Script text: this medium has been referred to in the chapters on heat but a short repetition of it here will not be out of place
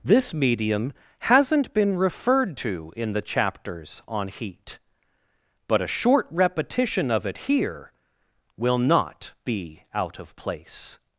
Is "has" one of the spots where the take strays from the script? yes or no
yes